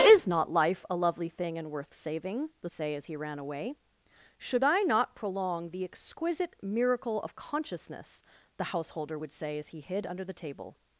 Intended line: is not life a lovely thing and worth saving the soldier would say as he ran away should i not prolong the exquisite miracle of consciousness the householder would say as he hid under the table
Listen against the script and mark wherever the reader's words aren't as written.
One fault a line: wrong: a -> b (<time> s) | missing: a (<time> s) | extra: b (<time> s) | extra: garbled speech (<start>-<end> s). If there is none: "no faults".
missing: soldier would (2.7 s)